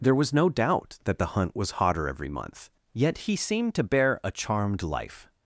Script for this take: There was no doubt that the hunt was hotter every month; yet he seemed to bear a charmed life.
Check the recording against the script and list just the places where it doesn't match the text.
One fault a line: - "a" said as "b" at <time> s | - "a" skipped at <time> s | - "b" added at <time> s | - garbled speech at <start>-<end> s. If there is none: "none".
none